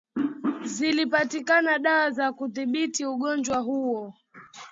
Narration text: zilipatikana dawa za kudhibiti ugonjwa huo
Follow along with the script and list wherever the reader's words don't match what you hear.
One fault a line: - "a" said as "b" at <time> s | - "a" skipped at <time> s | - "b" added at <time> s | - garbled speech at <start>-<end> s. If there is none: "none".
none